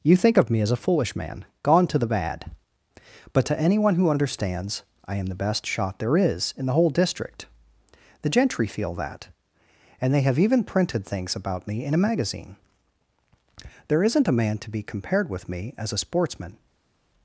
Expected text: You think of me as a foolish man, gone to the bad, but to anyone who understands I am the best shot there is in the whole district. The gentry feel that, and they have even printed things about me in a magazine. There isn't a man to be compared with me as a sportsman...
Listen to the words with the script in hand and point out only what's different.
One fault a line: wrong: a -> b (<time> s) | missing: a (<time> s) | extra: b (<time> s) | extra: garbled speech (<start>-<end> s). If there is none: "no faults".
no faults